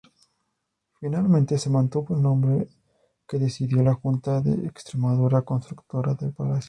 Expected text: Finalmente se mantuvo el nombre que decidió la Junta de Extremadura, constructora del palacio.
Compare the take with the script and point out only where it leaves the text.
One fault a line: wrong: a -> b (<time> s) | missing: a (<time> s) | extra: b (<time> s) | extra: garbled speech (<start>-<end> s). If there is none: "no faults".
no faults